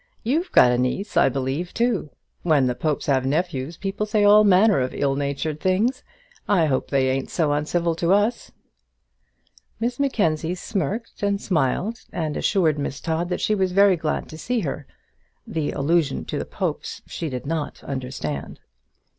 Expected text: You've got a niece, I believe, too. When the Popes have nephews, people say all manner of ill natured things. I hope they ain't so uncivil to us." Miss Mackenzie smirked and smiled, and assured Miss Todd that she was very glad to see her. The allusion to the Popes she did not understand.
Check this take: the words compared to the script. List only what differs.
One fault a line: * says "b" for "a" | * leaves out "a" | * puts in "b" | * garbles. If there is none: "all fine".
all fine